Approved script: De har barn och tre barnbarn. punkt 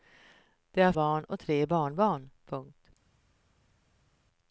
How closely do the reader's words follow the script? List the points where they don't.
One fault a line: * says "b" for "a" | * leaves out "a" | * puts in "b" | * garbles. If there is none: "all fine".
all fine